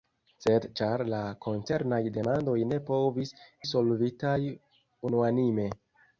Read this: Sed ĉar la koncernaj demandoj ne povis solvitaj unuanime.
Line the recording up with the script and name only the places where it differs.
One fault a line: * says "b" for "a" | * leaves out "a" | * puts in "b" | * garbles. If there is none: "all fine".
all fine